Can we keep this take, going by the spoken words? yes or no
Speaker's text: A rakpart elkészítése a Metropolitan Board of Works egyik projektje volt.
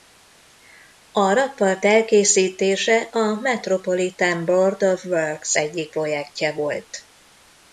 yes